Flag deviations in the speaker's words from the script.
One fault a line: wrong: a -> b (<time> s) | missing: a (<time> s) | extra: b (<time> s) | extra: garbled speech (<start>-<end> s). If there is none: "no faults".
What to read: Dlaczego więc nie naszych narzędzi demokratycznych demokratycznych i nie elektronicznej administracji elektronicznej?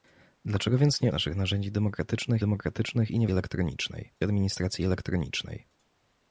no faults